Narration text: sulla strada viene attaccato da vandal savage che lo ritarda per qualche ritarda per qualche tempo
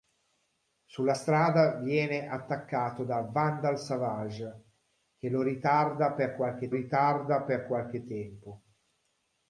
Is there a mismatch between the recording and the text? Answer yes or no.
no